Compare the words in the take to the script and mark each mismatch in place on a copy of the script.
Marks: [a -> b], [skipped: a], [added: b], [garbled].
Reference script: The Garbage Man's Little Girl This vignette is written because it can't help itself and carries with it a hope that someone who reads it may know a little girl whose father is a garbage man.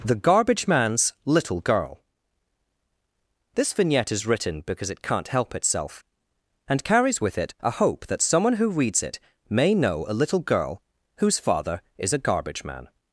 The Garbage Man's Little Girl This vignette is written because it can't help itself and carries with it a hope that someone who reads it may know a little girl whose father is a garbage man.